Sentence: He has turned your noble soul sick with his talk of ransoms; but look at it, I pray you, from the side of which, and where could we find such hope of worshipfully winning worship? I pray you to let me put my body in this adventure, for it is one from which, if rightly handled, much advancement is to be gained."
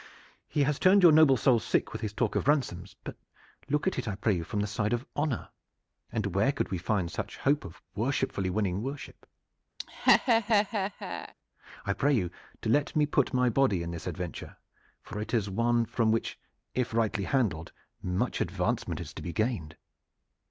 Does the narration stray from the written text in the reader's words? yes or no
yes